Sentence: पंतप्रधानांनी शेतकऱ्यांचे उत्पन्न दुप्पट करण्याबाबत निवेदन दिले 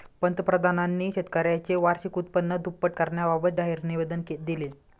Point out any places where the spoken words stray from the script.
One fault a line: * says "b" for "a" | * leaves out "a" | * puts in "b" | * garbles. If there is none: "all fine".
* puts in "वार्षिक"
* puts in "जाहीर"